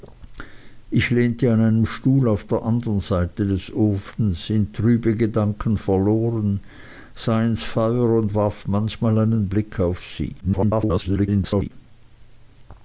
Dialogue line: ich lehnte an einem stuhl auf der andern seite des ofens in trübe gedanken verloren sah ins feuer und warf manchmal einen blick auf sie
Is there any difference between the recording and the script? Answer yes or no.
yes